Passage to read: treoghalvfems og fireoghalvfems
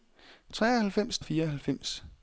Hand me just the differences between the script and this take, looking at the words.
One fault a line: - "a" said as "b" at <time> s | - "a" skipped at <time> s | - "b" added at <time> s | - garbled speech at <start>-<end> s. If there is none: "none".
none